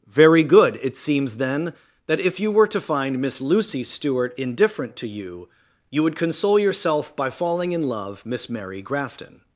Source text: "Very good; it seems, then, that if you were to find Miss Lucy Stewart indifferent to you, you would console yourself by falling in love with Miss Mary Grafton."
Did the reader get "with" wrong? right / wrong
wrong